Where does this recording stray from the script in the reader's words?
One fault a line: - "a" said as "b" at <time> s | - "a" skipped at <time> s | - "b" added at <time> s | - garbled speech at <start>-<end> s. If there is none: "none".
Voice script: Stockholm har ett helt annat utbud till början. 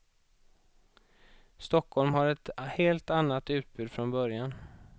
- "till" said as "från" at 3.9 s